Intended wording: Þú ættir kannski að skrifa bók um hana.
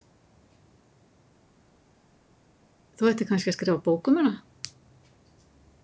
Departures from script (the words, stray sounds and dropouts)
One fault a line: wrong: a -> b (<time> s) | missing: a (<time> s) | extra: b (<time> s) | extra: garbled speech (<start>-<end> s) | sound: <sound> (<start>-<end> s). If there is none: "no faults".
no faults